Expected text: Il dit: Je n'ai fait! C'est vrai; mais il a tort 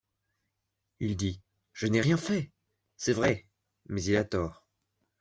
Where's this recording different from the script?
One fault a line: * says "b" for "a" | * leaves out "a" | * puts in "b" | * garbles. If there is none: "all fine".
* puts in "rien"